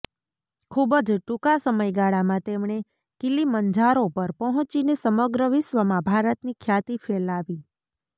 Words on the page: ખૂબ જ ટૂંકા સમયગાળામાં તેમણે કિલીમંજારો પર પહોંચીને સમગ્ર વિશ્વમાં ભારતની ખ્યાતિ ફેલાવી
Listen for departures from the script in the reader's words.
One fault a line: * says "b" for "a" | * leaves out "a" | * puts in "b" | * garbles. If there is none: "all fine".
all fine